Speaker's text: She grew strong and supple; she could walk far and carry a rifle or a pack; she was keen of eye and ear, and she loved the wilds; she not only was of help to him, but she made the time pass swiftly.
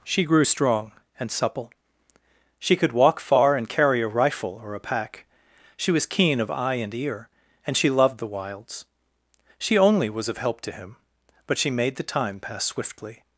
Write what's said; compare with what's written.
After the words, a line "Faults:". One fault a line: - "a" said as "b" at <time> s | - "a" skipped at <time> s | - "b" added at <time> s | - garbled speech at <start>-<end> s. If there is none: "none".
She grew strong and supple; she could walk far and carry a rifle or a pack; she was keen of eye and ear, and she loved the wilds; she only was of help to him, but she made the time pass swiftly.
Faults:
- "not" skipped at 9.8 s